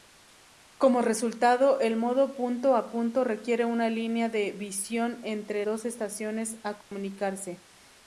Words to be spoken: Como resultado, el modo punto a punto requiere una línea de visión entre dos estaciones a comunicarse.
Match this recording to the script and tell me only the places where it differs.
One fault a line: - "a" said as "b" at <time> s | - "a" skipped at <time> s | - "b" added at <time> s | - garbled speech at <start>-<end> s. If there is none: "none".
none